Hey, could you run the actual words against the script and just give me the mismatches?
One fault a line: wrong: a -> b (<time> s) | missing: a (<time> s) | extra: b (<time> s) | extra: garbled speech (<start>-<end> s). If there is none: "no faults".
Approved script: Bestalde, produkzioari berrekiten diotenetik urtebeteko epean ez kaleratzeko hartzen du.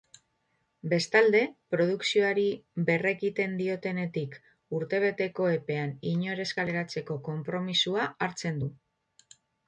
extra: inor (6.1 s)
extra: konpromisoa (7.3 s)